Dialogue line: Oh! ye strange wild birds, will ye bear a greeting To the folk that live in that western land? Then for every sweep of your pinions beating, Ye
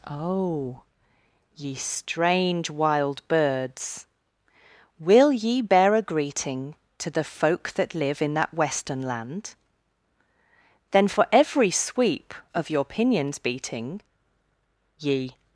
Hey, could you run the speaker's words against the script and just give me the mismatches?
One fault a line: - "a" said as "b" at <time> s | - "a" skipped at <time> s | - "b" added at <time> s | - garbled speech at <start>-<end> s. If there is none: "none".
none